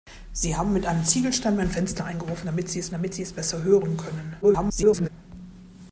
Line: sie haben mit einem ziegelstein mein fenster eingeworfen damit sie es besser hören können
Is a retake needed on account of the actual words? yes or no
yes